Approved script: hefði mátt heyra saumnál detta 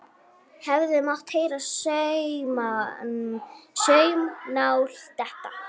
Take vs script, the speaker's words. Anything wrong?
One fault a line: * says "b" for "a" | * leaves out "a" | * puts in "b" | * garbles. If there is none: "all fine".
all fine